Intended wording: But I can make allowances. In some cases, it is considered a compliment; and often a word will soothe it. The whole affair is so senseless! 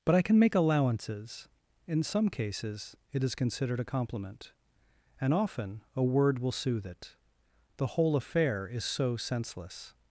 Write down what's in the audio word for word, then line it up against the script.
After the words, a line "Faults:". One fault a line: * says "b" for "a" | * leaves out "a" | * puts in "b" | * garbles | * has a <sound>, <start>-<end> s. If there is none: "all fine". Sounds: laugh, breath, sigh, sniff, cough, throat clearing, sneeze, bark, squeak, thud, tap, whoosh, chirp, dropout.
But I can make allowances. In some cases, it is considered a compliment; and often a word will soothe it. The whole affair is so senseless!
Faults:
all fine